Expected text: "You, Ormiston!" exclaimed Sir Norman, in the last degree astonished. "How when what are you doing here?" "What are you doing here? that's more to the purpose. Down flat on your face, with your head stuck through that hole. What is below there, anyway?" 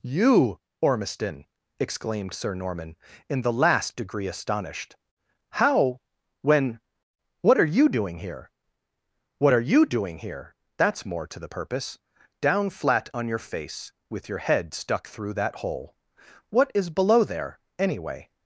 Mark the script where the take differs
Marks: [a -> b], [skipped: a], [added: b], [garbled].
"You, Ormiston!" exclaimed Sir Norman, in the last degree astonished. "How when what are you doing here?" "What are you doing here? that's more to the purpose. Down flat on your face, with your head stuck through that hole. What is below there, anyway?"